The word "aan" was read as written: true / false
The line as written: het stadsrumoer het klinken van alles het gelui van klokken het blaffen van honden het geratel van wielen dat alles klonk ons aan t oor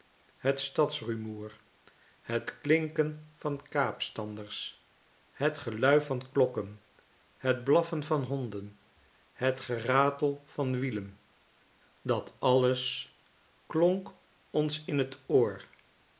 false